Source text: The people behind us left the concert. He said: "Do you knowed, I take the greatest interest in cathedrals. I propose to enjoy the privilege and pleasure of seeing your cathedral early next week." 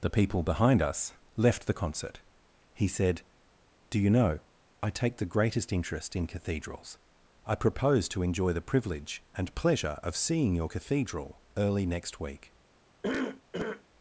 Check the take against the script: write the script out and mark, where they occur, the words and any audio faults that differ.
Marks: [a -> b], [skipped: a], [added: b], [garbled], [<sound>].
The people behind us left the concert. He said: "Do you [knowed, -> know] I take the greatest interest in cathedrals. I propose to enjoy the privilege and pleasure of seeing your cathedral early next week." [cough]